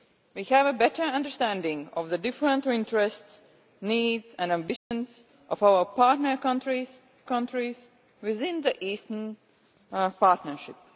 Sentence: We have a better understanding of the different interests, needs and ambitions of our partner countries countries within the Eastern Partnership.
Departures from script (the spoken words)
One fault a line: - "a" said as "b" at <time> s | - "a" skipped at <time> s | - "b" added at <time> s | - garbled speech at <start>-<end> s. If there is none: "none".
none